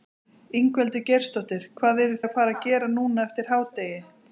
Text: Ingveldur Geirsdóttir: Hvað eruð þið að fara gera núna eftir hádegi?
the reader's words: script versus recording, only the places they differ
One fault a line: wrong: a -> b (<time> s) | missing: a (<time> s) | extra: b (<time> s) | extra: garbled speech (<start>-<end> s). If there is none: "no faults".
missing: þið (2.2 s)